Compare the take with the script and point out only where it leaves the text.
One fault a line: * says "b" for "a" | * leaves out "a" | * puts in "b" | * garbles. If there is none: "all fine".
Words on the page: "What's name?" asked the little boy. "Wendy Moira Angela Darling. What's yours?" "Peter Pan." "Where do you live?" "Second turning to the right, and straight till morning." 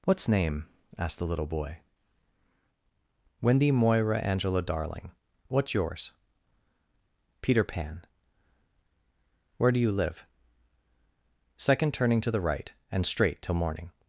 all fine